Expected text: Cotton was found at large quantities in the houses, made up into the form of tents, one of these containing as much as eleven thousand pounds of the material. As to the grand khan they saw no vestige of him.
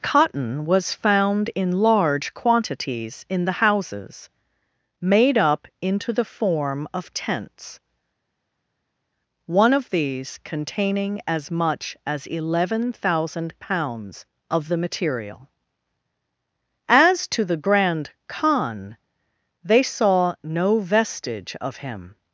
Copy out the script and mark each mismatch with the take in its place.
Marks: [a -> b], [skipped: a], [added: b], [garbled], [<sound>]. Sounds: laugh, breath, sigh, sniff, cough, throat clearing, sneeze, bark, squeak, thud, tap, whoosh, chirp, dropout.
Cotton was found [at -> in] large quantities in the houses, made up into the form of tents, one of these containing as much as eleven thousand pounds of the material. As to the grand khan they saw no vestige of him.